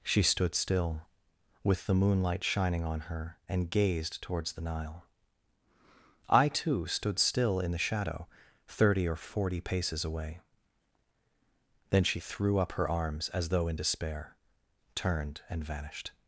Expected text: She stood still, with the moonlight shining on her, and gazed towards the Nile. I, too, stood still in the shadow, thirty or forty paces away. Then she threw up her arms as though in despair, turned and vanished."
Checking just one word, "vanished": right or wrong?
right